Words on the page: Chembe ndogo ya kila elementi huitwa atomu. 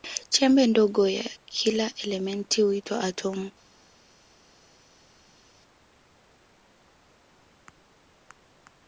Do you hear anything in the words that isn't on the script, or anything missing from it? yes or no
no